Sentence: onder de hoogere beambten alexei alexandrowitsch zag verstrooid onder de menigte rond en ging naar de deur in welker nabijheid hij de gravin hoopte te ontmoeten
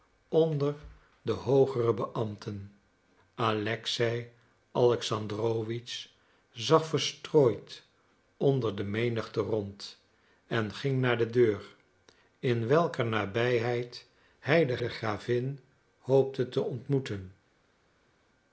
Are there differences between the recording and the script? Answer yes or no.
yes